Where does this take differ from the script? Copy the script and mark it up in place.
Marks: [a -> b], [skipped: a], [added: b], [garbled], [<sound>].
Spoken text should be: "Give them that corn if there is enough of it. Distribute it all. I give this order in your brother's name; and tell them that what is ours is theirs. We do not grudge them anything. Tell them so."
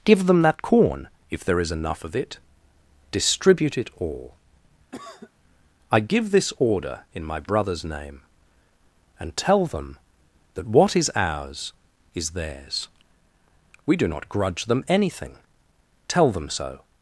"Give them that corn if there is enough of it. Distribute it all. [cough] I give this order in [your -> my] brother's name; and tell them that what is ours is theirs. We do not grudge them anything. Tell them so."